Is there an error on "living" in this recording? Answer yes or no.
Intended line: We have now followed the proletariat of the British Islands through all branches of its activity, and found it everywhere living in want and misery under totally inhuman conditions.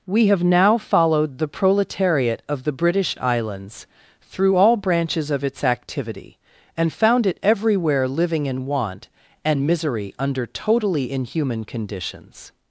no